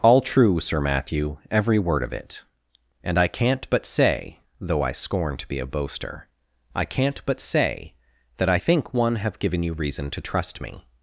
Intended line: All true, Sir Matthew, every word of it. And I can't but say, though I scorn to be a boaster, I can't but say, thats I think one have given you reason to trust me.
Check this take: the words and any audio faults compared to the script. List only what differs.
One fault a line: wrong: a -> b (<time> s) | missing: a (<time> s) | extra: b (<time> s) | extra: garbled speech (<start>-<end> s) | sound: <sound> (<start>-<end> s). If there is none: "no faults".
wrong: thats -> that (8.4 s)